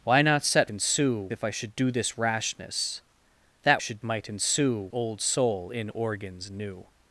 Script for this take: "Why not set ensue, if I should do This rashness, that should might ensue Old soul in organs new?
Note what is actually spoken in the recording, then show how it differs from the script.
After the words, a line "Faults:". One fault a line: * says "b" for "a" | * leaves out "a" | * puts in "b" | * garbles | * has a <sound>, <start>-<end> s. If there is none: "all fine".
"Why not set ensue, if I should do This rashness, that should might ensue Old soul in organs new?
Faults:
all fine